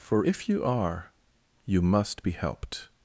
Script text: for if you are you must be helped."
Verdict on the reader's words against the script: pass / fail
pass